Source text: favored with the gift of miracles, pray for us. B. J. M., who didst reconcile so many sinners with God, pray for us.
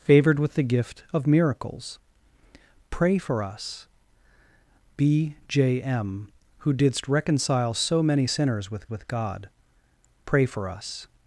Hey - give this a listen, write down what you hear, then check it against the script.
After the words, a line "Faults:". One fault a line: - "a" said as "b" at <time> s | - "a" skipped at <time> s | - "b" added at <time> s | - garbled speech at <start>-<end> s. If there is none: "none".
favored with the gift of miracles, pray for us. B. J. M., who didst reconcile so many sinners with with God, pray for us.
Faults:
- "with" added at 8.9 s